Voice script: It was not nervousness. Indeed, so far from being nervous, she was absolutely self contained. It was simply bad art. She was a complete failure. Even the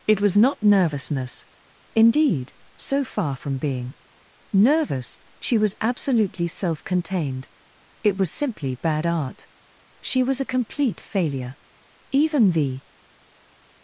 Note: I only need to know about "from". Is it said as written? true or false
true